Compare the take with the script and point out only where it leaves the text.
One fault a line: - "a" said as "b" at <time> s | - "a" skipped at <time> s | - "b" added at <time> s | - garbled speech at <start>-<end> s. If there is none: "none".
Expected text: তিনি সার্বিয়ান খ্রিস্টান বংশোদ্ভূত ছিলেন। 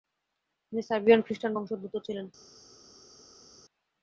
none